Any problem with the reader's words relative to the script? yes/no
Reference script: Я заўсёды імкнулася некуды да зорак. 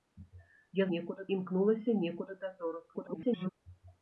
yes